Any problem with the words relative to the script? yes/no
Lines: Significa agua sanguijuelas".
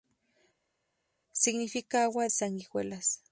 no